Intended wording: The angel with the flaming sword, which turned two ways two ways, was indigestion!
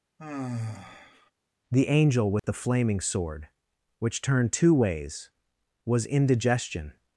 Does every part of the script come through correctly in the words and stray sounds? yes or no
no